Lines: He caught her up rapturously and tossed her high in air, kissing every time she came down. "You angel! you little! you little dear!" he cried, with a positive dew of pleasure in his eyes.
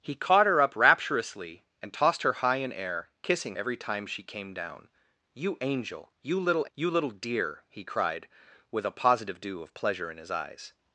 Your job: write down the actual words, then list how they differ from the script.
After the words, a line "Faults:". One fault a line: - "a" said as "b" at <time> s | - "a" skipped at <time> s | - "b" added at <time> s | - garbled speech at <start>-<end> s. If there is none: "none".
He caught her up rapturously and tossed her high in air, kissing every time she came down. "You angel! you little! you little dear!" he cried, with a positive dew of pleasure in his eyes.
Faults:
none